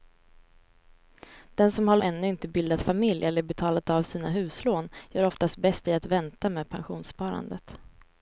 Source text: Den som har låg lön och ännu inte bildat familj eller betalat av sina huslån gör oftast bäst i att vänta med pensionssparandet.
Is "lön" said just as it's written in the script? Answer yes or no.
no